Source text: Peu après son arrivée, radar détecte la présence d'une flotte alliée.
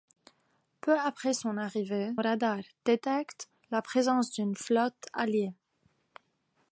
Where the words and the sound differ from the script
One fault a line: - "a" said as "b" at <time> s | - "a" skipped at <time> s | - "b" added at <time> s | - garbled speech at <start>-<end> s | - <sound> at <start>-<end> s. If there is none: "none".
none